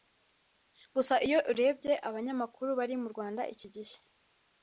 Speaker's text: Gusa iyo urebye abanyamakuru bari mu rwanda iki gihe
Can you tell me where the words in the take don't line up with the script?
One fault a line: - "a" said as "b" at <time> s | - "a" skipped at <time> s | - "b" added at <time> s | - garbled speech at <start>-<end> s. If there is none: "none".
none